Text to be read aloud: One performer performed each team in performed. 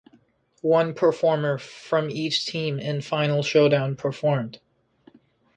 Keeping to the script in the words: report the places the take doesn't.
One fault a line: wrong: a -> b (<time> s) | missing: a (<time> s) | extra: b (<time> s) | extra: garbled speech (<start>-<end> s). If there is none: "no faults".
wrong: performed -> from (1.6 s)
extra: final showdown (3.0 s)